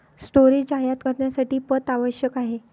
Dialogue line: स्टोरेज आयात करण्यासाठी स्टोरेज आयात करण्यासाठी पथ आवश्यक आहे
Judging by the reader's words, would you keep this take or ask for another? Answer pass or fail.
fail